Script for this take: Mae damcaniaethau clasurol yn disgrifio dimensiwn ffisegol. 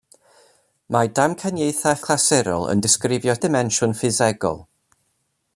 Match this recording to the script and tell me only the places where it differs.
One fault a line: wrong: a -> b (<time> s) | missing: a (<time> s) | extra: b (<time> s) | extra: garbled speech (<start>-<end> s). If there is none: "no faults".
no faults